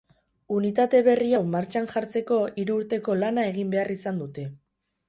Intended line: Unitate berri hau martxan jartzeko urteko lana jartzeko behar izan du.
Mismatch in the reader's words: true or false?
true